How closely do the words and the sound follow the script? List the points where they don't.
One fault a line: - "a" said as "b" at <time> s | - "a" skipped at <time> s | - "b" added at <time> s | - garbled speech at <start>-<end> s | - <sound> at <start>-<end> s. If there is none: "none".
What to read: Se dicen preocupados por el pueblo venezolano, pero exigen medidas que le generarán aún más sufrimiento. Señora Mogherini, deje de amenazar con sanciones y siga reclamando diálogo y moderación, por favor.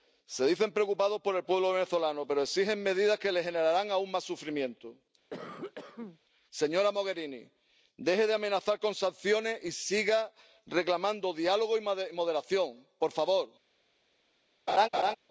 - cough at 5.3-6.2 s
- laugh at 14.7-15.2 s